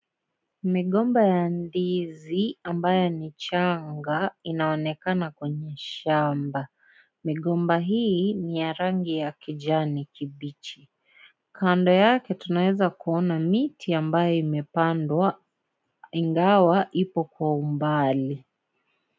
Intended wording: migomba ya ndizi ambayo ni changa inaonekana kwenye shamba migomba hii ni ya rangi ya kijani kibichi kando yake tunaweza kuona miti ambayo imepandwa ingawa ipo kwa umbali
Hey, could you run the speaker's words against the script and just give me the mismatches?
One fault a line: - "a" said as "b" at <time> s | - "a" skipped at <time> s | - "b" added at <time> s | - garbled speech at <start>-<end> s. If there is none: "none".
none